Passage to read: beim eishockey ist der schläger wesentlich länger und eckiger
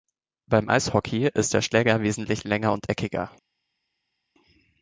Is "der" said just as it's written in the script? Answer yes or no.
yes